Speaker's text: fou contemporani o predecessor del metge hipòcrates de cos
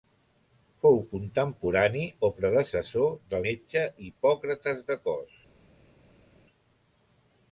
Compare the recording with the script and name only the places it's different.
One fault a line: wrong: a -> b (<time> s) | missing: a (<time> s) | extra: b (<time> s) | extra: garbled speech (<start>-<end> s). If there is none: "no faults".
no faults